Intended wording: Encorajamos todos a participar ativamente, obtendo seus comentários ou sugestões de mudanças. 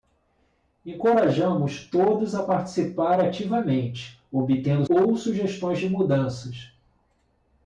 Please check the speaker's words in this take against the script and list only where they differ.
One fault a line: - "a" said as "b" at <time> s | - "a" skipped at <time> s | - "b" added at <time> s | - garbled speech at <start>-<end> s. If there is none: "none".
- "seus comentários" skipped at 4.9 s